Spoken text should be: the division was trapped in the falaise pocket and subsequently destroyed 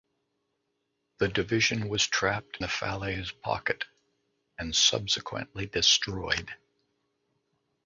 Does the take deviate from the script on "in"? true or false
true